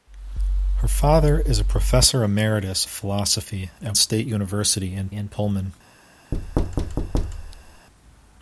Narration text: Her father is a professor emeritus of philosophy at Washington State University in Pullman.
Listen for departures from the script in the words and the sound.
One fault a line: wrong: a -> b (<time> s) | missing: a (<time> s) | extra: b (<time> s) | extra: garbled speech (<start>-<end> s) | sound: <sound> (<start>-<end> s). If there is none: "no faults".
missing: of (2.9 s)
missing: Washington (4.0 s)
extra: in (5.1 s)
sound: thud (6.3-7.9 s)